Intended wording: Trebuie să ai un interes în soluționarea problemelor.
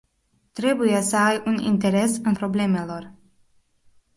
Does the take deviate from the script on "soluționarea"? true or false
true